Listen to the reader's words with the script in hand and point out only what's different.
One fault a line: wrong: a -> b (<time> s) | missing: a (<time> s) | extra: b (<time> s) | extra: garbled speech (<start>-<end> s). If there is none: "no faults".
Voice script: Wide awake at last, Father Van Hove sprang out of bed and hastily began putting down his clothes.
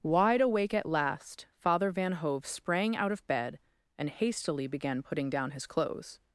no faults